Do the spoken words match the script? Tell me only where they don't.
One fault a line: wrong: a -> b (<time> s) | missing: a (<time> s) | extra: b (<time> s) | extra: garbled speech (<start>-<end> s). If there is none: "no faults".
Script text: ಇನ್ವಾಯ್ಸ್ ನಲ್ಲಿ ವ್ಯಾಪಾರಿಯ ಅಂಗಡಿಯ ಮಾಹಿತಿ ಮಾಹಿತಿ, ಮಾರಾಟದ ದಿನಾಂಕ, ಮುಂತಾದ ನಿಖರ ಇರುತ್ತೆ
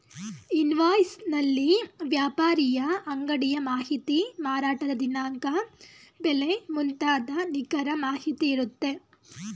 missing: ಮಾಹಿತಿ (4.2 s)
extra: ಬೆಲೆ (6.2 s)
extra: ಮಾಹಿತಿ (8.1 s)